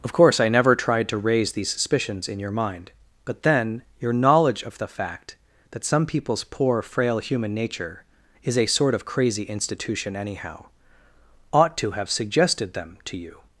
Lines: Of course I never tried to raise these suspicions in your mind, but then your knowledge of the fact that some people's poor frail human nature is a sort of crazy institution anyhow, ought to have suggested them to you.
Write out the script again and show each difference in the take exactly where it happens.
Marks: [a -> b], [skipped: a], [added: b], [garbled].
Of course I never tried to raise these suspicions in your mind, but then your knowledge of the fact that some people's poor frail human nature is a sort of crazy institution anyhow, ought to have suggested them to you.